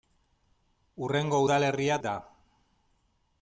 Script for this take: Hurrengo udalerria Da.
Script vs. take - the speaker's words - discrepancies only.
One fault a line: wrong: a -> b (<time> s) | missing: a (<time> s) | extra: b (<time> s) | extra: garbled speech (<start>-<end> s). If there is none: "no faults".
no faults